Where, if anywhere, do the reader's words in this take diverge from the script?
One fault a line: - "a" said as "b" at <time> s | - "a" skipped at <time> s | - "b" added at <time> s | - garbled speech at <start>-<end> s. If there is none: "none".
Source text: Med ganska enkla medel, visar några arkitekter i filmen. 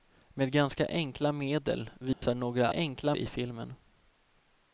- "arkitekter" said as "enkla" at 2.7 s